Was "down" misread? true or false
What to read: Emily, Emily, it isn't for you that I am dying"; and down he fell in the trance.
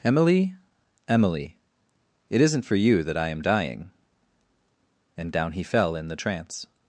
false